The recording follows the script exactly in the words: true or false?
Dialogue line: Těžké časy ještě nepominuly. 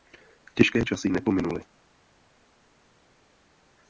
false